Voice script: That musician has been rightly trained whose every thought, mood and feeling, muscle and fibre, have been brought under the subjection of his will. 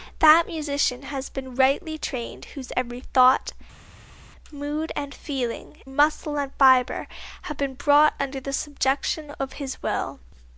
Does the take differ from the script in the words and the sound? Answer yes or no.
no